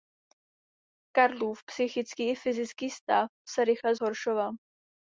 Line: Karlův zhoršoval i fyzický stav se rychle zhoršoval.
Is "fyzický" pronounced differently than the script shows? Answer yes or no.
no